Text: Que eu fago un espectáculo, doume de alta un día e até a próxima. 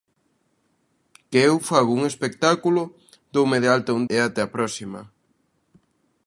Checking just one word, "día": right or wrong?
wrong